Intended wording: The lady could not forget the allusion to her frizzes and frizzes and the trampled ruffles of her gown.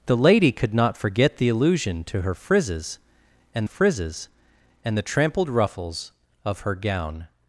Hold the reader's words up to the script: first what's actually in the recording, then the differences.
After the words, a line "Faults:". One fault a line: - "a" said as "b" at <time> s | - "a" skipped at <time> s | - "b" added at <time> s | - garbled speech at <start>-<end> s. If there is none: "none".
The lady could not forget the allusion to her frizzes and frizzes and the trampled ruffles of her gown.
Faults:
none